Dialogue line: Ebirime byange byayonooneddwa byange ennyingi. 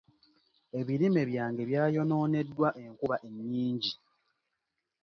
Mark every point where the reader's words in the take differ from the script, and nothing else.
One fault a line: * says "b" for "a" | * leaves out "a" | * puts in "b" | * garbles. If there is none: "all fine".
* says "enkuba" for "byange"